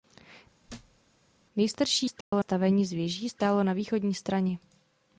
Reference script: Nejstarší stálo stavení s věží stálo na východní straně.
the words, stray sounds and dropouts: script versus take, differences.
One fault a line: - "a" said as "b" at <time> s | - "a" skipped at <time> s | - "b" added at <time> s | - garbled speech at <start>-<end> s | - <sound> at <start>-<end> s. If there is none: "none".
- thud at 0.7-1.0 s
- dropout at 2.2-2.3 s